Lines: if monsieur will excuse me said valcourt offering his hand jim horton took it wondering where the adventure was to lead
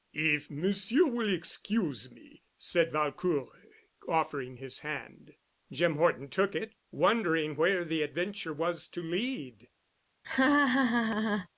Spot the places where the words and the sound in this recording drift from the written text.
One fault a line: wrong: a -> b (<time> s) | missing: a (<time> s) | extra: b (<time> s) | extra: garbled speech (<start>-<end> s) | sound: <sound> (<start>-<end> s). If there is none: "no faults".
sound: laugh (10.2-11.5 s)